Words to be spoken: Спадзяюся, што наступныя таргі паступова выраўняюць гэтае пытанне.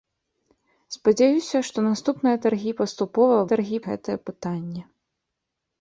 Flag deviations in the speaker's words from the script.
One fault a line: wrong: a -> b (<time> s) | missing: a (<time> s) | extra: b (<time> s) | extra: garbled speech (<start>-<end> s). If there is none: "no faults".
wrong: выраўняюць -> таргі (3.5 s)